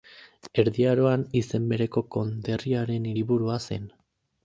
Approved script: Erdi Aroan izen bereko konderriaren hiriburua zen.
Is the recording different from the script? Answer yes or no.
no